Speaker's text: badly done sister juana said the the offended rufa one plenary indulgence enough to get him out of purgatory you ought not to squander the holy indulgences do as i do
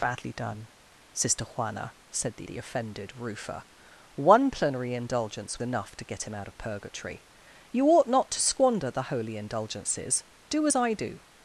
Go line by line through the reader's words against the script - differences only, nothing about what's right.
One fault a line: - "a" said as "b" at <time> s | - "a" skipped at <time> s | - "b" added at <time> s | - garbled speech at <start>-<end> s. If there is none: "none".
none